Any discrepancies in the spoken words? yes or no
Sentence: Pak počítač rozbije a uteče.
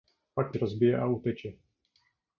yes